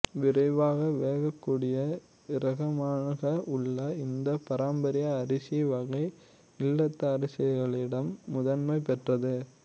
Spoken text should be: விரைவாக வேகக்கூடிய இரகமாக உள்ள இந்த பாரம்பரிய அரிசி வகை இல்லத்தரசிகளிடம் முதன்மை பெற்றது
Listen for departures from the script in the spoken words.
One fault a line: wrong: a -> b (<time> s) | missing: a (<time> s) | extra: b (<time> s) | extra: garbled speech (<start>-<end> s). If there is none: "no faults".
no faults